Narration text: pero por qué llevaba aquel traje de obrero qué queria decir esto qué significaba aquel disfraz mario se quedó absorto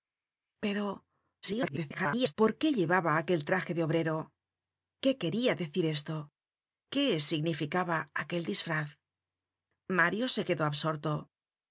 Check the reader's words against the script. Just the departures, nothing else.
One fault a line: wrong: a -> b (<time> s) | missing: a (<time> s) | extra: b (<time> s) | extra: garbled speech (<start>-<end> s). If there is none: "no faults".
extra: garbled speech (1.4-2.3 s)